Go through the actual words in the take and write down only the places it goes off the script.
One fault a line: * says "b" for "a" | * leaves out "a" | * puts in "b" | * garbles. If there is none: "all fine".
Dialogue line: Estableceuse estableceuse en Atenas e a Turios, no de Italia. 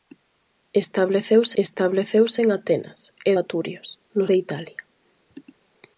all fine